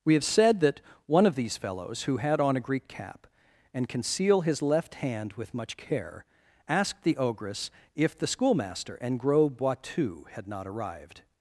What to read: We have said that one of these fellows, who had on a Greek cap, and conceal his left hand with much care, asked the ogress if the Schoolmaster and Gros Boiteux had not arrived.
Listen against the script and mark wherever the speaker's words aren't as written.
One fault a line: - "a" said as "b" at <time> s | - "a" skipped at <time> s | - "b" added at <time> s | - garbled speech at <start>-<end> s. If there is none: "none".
none